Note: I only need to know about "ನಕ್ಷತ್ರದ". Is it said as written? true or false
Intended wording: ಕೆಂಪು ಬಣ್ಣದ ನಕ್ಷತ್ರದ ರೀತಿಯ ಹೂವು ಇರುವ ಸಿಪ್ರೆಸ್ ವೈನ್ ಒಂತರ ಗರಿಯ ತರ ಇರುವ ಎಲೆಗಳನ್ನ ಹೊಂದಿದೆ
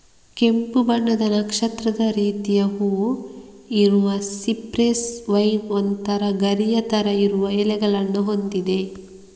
true